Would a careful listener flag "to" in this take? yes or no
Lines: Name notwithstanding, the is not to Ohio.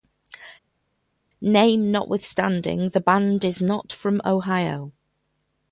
yes